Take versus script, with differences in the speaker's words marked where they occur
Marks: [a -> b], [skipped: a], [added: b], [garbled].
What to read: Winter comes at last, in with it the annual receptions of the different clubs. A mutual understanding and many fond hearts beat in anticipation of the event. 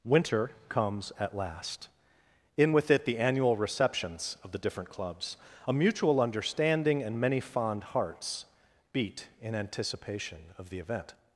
Winter comes at last, in with it the annual receptions of the different clubs. A mutual understanding and many fond hearts beat in anticipation of the event.